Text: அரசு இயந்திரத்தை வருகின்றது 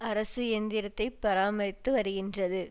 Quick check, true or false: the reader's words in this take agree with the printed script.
false